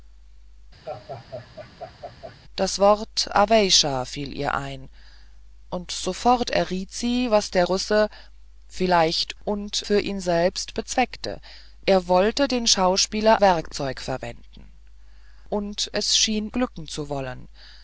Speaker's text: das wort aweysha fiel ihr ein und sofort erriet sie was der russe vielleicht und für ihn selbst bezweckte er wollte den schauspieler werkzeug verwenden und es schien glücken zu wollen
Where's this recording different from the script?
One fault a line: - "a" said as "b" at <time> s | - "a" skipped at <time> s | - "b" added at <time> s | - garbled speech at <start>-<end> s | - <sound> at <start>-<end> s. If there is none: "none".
- laugh at 0.9-2.4 s